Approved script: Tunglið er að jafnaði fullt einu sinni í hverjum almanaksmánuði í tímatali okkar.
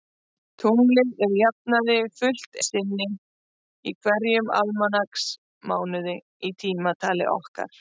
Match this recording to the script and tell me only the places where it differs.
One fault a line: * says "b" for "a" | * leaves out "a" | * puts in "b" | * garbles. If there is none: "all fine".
* leaves out "einu"